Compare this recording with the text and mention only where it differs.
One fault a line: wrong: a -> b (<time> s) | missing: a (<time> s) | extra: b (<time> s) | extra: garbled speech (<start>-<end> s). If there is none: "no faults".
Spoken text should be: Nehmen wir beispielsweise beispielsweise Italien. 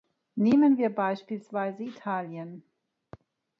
missing: beispielsweise (1.8 s)